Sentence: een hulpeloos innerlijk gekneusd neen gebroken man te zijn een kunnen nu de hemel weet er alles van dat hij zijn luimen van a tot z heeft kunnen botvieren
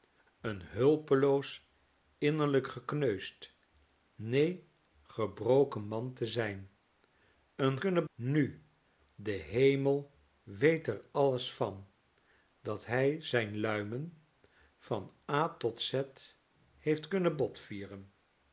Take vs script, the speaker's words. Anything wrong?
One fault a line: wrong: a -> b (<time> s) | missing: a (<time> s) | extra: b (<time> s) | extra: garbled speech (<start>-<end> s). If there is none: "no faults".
no faults